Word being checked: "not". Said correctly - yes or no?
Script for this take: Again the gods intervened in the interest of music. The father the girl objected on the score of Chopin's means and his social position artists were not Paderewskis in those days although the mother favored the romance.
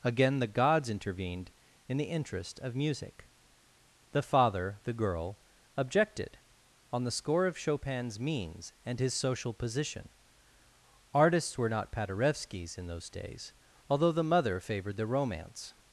yes